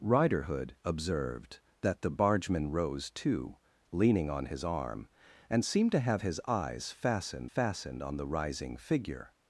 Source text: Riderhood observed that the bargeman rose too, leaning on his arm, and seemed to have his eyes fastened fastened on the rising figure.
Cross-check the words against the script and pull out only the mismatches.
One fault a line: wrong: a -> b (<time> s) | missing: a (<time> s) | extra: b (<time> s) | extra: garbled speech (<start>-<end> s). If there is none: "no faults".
no faults